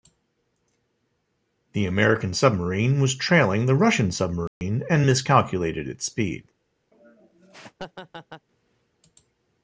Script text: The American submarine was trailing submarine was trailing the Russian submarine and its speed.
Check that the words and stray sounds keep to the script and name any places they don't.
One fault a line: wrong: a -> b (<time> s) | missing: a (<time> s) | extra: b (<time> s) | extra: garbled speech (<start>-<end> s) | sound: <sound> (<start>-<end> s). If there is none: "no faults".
missing: submarine was trailing (3.7 s)
sound: dropout (4.5-4.6 s)
extra: miscalculated (5.0 s)
sound: laugh (6.9-8.5 s)